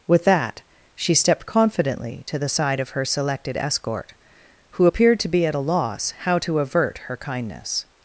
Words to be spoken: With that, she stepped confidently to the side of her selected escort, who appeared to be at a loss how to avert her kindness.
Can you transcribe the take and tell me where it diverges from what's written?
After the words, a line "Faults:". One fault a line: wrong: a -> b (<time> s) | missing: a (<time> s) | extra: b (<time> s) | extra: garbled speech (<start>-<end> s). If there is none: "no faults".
With that, she stepped confidently to the side of her selected escort, who appeared to be at a loss how to avert her kindness.
Faults:
no faults